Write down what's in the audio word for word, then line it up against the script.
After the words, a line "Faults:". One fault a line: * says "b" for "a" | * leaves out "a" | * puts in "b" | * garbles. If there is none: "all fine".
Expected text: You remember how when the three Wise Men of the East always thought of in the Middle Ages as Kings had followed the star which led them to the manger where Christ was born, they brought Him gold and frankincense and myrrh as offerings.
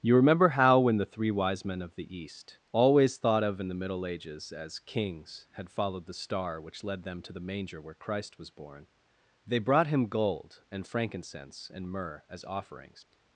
You remember how when the three Wise Men of the East always thought of in the Middle Ages as Kings had followed the star which led them to the manger where Christ was born, they brought Him gold and frankincense and myrrh as offerings.
Faults:
all fine